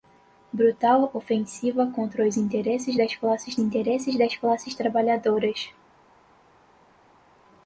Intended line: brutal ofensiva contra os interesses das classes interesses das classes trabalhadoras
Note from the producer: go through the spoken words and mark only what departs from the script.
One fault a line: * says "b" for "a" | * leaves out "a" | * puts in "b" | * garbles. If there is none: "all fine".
all fine